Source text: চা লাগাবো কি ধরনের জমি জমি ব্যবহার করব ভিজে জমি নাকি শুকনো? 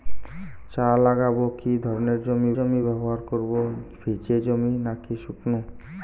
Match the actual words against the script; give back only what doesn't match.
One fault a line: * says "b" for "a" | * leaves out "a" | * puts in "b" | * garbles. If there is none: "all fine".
all fine